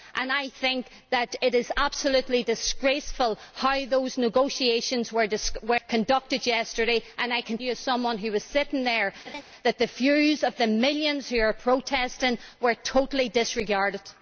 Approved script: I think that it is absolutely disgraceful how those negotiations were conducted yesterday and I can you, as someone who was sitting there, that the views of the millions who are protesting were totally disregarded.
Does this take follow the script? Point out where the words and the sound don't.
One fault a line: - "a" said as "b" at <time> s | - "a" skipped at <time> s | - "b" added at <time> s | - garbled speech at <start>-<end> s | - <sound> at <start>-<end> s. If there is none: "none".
- laugh at 9.2-9.4 s